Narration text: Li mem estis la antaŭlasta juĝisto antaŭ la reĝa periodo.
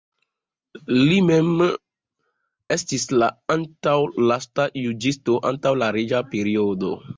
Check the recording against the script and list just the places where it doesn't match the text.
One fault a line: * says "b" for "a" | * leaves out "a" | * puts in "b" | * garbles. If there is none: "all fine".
all fine